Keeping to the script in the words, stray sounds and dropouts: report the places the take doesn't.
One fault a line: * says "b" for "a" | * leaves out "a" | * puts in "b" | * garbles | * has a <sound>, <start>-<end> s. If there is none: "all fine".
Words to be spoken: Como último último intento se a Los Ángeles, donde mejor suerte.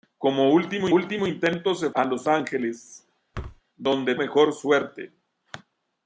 * has a thud, 3.3-3.6 s